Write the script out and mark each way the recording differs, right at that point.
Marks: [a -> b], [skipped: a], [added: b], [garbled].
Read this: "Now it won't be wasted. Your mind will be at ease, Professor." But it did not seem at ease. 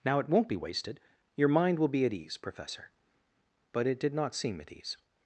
"Now it won't be wasted. Your mind will be at ease, Professor." But it did not seem at ease.